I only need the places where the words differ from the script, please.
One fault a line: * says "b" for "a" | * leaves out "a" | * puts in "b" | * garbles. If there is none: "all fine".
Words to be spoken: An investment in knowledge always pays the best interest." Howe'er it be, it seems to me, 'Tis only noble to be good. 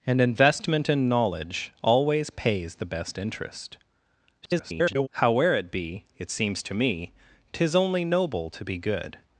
* garbles